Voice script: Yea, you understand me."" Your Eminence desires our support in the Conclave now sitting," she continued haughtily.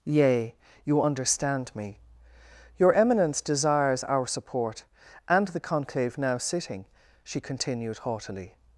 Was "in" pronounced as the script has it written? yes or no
no